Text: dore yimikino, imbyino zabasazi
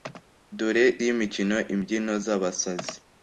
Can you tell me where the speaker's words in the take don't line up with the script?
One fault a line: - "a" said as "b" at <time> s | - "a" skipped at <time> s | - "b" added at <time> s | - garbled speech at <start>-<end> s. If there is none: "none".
none